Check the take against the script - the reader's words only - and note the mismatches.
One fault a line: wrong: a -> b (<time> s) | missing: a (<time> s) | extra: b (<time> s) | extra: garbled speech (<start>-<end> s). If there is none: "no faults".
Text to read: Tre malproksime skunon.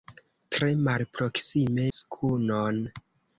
no faults